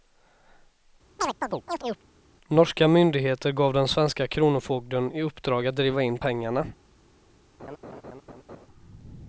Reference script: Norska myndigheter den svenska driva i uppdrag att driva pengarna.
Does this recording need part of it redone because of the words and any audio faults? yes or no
yes